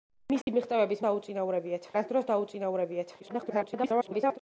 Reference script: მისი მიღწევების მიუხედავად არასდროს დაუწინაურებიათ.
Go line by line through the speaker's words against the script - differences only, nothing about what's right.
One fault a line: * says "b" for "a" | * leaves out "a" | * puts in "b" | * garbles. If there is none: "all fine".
* says "დაუწინაურებიათ" for "მიუხედავად"
* garbles